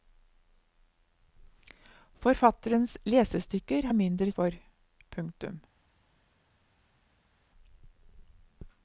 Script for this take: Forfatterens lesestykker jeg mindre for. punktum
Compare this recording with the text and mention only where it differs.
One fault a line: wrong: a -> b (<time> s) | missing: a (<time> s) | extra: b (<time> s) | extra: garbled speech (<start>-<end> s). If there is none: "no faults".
no faults